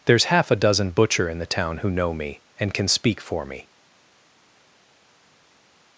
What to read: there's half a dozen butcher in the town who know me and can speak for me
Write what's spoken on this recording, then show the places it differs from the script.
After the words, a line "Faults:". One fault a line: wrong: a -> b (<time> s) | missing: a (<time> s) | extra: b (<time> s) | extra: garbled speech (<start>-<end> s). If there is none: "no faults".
there's half a dozen butcher in the town who know me and can speak for me
Faults:
no faults